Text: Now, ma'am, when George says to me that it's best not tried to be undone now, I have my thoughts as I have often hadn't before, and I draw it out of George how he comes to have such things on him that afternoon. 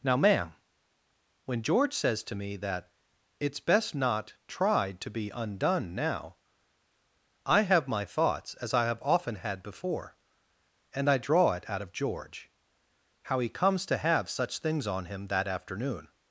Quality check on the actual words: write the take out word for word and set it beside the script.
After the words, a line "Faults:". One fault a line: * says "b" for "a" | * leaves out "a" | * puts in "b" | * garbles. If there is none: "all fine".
Now, ma'am, when George says to me that it's best not tried to be undone now, I have my thoughts as I have often had before, and I draw it out of George how he comes to have such things on him that afternoon.
Faults:
* says "had" for "hadn't"